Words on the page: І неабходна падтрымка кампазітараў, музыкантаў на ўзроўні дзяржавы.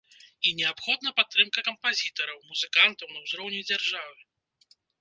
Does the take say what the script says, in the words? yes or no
yes